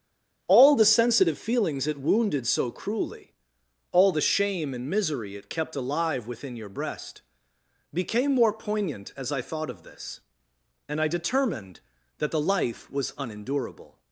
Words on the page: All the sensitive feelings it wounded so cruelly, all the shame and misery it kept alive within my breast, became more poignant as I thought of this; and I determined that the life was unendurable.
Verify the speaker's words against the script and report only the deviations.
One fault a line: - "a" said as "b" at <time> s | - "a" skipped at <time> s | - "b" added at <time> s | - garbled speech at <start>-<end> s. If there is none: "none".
- "my" said as "your" at 6.6 s